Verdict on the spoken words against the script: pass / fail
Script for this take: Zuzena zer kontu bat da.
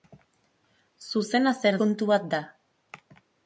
pass